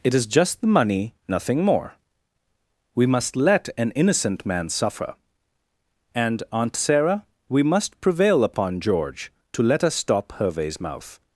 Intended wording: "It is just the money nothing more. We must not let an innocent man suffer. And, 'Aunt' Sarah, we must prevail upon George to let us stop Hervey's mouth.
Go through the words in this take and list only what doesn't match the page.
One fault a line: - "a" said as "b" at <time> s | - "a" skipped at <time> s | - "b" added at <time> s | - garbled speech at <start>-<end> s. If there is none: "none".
- "not" skipped at 3.4 s